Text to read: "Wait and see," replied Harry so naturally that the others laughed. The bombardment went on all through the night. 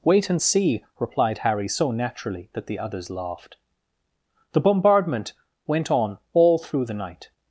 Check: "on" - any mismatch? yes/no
no